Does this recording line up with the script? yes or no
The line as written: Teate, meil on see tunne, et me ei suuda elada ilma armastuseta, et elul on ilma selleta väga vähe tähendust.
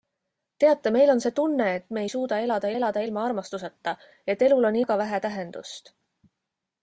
no